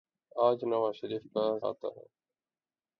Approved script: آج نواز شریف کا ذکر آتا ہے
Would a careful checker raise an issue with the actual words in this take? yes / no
yes